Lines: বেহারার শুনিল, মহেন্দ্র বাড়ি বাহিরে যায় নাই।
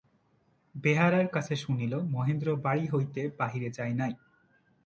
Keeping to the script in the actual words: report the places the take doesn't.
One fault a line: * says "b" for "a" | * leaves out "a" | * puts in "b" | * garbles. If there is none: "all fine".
* puts in "কাছে"
* puts in "হইতে"